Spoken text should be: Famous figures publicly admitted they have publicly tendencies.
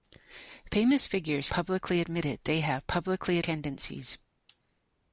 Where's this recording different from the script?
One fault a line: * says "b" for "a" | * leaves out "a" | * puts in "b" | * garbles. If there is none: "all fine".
all fine